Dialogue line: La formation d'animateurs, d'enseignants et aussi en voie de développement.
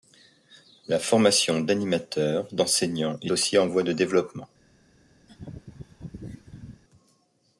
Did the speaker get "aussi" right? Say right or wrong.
right